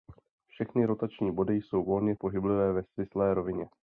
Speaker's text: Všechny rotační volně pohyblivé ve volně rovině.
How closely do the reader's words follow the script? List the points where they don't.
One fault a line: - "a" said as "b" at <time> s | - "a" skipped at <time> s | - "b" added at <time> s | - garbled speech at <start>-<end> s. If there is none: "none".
- "body jsou" added at 1.3 s
- "volně" said as "svislé" at 2.8 s